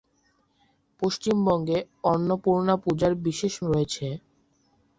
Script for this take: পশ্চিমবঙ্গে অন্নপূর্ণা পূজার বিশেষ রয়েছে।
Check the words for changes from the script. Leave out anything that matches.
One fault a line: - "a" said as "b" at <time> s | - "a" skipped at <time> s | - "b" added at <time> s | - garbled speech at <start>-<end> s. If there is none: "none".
none